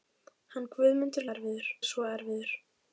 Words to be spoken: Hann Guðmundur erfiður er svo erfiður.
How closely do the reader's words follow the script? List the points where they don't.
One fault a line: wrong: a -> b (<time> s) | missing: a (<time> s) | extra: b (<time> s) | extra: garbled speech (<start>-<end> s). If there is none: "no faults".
no faults